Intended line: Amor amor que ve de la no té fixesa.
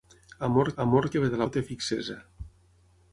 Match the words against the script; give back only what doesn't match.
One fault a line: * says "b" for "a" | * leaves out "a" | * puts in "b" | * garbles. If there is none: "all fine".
all fine